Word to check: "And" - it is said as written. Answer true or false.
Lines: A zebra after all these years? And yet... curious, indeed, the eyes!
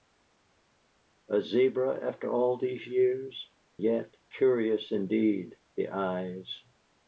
false